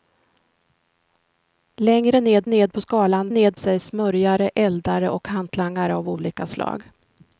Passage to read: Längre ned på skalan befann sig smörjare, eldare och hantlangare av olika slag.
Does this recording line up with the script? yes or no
no